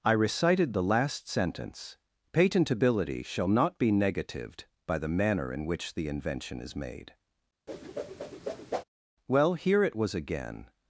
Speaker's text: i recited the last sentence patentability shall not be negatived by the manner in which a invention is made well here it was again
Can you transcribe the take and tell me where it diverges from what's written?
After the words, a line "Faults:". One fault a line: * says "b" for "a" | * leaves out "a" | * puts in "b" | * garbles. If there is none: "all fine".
i recited the last sentence patentability shall not be negatived by the manner in which the invention is made well here it was again
Faults:
* says "the" for "a"